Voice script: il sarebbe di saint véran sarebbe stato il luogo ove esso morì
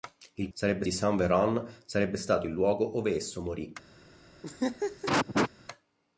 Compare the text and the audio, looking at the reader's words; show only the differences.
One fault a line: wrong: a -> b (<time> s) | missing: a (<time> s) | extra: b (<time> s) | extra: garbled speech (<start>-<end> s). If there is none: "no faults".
no faults